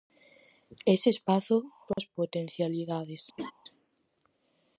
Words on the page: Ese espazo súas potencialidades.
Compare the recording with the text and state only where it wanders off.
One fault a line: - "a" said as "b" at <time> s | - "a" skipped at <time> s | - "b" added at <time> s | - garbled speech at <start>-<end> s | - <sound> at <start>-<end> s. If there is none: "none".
- dropout at 1.9-2.0 s
- laugh at 3.4-3.5 s